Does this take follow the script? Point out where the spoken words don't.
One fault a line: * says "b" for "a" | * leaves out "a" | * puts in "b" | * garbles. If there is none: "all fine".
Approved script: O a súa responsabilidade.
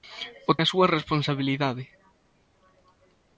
all fine